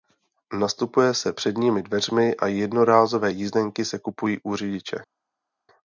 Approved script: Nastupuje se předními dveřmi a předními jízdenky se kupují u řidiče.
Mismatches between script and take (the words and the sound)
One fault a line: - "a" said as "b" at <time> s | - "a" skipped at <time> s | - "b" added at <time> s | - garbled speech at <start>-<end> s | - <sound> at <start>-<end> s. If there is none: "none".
- "předními" said as "jednorázové" at 2.5 s